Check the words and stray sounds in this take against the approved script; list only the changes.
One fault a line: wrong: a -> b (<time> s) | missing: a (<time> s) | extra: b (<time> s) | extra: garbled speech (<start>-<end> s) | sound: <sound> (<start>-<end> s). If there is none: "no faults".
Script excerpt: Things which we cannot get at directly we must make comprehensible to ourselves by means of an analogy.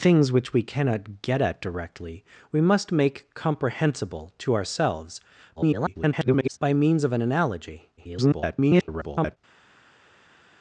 extra: garbled speech (5.6-6.6 s)
extra: garbled speech (8.0-9.4 s)